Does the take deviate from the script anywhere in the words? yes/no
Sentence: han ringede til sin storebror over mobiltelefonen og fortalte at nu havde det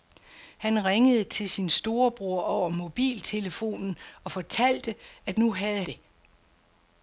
no